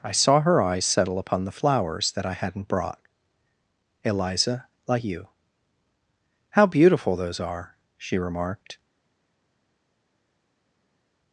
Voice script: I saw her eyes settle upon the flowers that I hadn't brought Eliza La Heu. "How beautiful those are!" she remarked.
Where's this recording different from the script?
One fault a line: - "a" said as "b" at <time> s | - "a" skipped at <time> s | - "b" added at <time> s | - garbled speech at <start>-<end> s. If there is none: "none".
none